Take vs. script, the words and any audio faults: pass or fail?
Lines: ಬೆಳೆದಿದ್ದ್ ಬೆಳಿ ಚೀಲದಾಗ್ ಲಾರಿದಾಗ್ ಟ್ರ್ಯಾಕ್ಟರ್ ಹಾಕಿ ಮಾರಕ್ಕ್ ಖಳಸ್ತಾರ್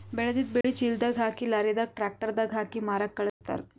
fail